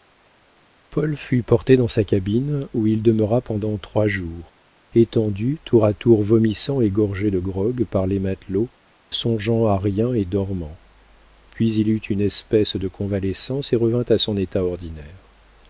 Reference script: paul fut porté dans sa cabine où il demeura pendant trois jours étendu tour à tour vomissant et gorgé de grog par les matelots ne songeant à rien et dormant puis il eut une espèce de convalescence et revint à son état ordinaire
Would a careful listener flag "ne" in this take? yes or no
yes